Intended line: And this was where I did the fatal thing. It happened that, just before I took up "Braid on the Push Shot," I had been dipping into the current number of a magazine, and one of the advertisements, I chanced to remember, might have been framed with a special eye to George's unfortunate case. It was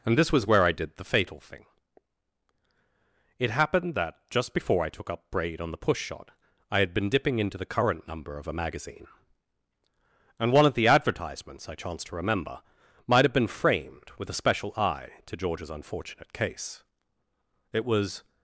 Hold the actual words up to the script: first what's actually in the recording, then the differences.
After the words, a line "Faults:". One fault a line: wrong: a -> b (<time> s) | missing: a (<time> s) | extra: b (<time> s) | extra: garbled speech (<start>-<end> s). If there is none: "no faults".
And this was where I did the fatal thing. It happened that, just before I took up "Braid on the Push Shot," I had been dipping into the current number of a magazine, and one of the advertisements, I chanced to remember, might have been framed with a special eye to George's unfortunate case. It was
Faults:
no faults